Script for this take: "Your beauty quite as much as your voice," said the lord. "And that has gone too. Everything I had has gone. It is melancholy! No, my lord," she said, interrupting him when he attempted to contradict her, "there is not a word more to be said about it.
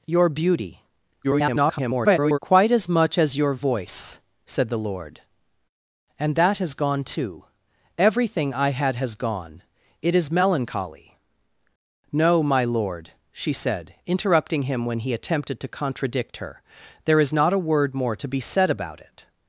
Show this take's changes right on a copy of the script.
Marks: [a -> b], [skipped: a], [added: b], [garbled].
"Your beauty [garbled] quite as much as your voice," said the lord. "And that has gone too. Everything I had has gone. It is melancholy! No, my lord," she said, interrupting him when he attempted to contradict her, "there is not a word more to be said about it.